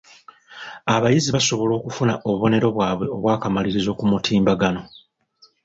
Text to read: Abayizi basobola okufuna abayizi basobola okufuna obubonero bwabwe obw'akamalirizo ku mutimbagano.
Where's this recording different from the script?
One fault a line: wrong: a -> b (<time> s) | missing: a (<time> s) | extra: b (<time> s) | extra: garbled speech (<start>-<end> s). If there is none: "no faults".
missing: abayizi basobola okufuna (2.1 s)